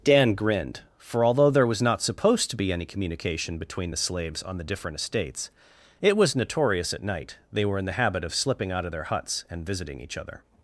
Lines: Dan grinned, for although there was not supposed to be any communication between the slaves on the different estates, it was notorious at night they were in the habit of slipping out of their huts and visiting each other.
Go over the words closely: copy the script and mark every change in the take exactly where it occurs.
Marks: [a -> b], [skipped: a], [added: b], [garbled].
Dan grinned, for although there was not supposed to be any communication between the slaves on the different estates, it was notorious at night they were in the habit of slipping out of their huts and visiting each other.